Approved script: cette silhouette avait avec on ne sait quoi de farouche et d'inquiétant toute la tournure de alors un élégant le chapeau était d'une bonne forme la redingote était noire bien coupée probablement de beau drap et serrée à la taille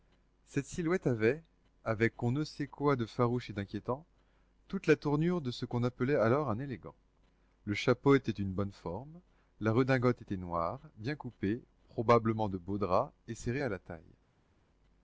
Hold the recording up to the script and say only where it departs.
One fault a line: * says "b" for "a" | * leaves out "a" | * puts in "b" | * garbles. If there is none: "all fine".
* puts in "ce qu'on appelait"